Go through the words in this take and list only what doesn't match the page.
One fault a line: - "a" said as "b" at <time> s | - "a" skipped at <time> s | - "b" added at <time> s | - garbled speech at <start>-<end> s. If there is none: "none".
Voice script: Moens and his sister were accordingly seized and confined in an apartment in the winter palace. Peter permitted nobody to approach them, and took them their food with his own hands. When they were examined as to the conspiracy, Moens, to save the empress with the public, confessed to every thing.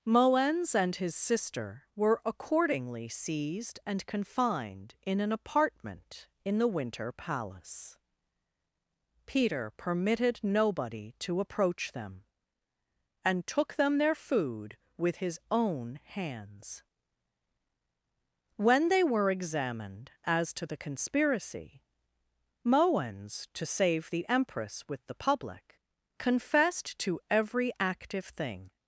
- "active" added at 27.8 s